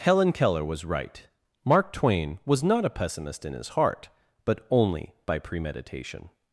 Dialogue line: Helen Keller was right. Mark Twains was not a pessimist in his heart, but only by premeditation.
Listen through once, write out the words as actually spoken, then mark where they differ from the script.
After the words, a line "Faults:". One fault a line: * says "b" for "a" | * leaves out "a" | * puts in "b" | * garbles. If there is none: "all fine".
Helen Keller was right. Mark Twain was not a pessimist in his heart, but only by premeditation.
Faults:
* says "Twain" for "Twains"